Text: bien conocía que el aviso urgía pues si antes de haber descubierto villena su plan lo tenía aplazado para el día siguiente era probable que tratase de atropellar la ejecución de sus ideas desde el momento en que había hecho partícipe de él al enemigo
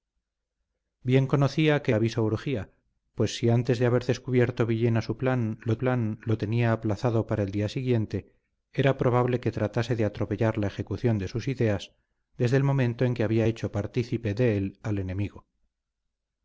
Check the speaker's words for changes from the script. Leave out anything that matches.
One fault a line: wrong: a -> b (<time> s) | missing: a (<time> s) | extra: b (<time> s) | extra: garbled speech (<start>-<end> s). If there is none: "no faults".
missing: el (1.9 s)
extra: plan lo (5.8 s)